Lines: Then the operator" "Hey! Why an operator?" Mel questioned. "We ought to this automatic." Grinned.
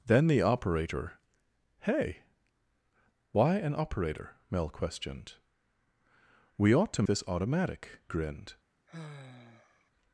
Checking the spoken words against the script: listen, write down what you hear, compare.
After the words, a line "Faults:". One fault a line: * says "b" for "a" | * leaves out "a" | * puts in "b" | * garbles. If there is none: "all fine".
Then the operator" "Hey! Why an operator?" Mel questioned. "We ought to this automatic." Grinned.
Faults:
all fine